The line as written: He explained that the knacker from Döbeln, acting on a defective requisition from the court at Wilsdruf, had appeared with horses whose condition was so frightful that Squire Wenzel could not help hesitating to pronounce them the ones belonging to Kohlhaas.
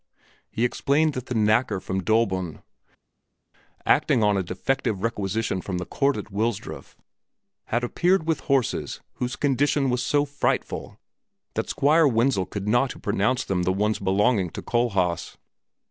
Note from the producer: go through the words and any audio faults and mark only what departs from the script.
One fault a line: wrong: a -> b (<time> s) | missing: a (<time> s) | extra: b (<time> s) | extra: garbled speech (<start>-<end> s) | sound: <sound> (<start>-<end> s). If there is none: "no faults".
missing: help hesitating (12.9 s)